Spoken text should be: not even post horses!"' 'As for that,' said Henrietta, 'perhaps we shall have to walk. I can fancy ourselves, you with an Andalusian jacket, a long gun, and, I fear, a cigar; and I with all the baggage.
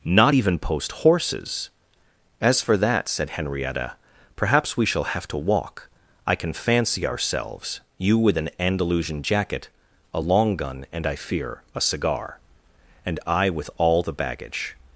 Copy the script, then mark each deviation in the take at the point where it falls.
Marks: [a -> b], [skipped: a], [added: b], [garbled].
not even post horses!"' 'As for that,' said Henrietta, 'perhaps we shall have to walk. I can fancy ourselves, you with an Andalusian jacket, a long gun, and, I fear, a cigar; and I with all the baggage.